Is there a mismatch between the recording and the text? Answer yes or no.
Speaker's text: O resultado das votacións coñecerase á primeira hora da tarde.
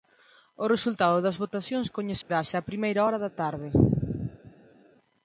no